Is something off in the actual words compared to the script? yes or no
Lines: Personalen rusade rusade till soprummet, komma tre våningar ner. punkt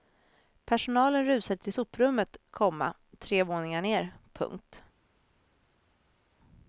yes